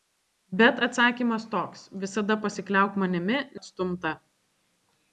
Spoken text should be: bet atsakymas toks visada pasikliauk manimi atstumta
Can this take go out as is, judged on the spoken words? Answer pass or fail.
pass